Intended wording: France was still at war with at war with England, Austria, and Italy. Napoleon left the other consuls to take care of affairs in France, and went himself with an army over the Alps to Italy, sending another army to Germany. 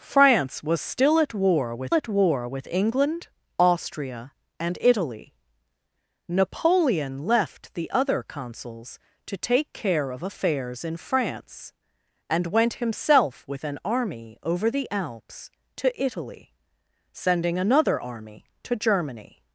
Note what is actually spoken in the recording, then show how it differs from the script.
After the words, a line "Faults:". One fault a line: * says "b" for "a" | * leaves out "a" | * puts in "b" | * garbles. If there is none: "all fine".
France was still at war with at war with England, Austria, and Italy. Napoleon left the other consuls to take care of affairs in France, and went himself with an army over the Alps to Italy, sending another army to Germany.
Faults:
all fine